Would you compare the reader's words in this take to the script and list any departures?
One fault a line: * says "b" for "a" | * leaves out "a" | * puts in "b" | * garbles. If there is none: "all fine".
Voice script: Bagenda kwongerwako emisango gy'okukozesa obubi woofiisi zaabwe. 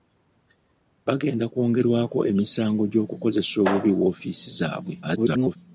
* garbles